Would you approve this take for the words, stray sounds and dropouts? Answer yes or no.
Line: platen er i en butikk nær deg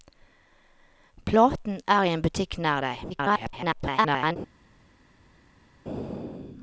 no